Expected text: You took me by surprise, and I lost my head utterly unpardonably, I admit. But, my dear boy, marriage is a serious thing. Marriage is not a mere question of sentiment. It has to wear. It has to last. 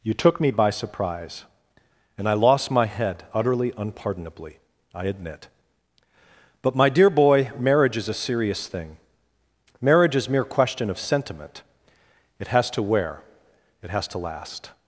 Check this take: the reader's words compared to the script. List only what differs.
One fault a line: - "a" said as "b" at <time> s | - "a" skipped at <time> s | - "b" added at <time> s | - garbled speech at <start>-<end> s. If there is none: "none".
- "not a" skipped at 10.3 s